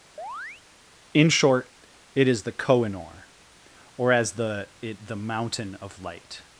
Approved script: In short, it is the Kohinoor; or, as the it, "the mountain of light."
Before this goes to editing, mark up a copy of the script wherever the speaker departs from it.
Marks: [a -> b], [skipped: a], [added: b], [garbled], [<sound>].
[chirp] In short, it is the Kohinoor; or, as the it, "the mountain of light."